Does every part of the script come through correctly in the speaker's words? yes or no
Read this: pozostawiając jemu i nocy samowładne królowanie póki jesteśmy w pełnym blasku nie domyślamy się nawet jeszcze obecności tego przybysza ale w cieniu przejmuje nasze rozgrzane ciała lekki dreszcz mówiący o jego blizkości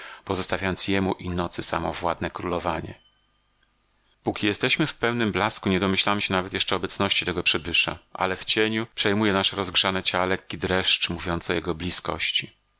yes